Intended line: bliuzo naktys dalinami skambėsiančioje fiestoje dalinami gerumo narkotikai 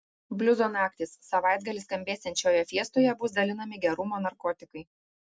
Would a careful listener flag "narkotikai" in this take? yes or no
no